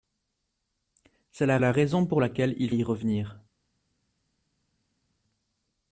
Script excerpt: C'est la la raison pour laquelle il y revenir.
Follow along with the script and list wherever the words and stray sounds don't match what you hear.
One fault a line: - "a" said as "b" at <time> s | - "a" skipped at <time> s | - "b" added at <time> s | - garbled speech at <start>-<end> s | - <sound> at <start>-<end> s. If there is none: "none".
none